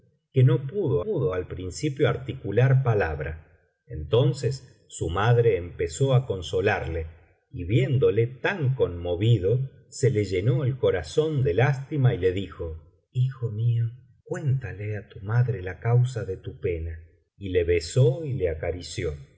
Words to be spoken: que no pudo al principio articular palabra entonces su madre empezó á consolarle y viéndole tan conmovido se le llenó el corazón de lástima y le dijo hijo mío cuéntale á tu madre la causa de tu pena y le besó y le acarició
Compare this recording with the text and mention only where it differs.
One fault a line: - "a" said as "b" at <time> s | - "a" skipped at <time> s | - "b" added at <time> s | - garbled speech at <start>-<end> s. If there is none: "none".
- "pudo" added at 1.0 s